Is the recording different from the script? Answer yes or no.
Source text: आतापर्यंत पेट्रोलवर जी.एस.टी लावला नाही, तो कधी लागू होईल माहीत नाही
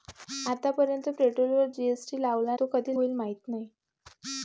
yes